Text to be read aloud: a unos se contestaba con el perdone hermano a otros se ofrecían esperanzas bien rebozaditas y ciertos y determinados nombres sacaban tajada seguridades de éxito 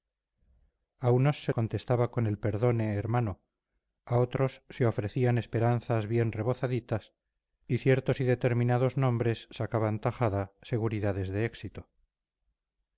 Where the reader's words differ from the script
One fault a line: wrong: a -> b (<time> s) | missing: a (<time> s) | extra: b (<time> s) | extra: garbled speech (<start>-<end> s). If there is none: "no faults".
no faults